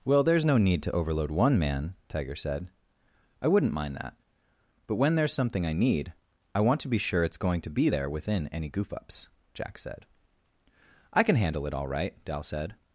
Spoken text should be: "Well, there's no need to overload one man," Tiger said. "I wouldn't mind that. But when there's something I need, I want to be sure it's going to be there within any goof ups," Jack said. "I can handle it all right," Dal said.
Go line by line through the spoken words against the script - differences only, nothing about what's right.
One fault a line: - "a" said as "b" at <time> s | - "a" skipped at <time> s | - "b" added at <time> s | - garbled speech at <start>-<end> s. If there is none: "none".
none